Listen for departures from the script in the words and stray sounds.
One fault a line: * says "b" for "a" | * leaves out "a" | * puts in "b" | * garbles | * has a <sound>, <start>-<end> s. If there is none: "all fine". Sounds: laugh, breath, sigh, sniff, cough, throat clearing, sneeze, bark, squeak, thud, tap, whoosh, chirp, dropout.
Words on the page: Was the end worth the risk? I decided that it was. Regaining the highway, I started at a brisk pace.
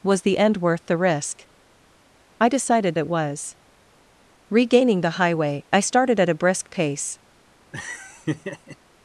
* leaves out "that"
* has a laugh, 7.7-8.8 s